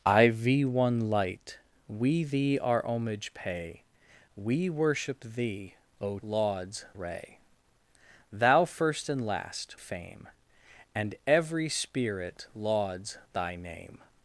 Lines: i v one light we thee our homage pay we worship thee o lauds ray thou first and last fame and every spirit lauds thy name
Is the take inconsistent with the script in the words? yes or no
no